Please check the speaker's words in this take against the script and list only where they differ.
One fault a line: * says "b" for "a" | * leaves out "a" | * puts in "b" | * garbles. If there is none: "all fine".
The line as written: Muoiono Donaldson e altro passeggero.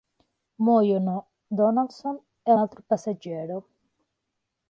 all fine